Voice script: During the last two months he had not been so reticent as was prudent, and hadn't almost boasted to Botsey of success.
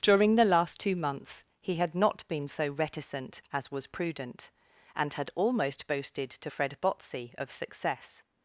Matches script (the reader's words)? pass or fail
fail